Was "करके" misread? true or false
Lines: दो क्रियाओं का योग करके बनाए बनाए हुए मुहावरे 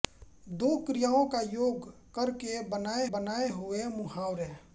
false